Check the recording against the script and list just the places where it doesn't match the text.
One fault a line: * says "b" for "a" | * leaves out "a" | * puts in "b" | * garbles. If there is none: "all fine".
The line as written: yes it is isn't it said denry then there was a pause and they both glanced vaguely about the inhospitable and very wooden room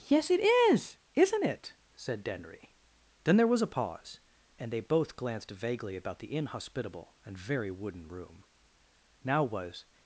* puts in "now was"